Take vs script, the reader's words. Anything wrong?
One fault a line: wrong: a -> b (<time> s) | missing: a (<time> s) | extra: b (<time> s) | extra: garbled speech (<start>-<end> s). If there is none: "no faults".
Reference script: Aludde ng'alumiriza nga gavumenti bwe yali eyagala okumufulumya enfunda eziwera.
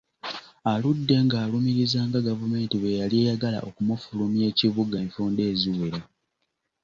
extra: ekibuga (4.5 s)